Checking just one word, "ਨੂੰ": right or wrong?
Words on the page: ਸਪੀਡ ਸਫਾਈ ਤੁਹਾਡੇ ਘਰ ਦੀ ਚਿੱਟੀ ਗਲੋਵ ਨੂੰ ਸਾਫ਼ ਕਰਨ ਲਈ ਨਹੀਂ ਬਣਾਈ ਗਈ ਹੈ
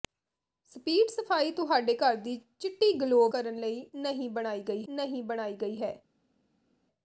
wrong